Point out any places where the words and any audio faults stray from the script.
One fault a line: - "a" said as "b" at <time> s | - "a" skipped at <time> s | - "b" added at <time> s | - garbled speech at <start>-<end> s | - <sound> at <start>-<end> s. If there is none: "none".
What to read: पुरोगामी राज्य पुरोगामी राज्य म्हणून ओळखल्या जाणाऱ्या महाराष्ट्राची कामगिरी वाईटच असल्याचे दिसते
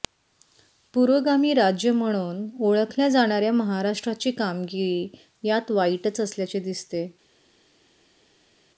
- "पुरोगामी राज्य" skipped at 1.9 s
- "यात" added at 5.4 s